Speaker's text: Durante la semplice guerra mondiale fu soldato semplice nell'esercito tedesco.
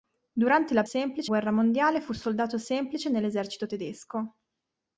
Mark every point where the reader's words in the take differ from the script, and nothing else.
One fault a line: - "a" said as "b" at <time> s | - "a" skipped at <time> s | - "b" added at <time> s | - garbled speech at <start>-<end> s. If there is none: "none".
none